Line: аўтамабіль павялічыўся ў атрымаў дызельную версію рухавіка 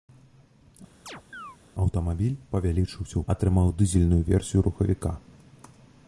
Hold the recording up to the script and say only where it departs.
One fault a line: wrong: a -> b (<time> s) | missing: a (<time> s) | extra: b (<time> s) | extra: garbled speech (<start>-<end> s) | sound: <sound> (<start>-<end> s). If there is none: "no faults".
sound: chirp (1.1-1.6 s)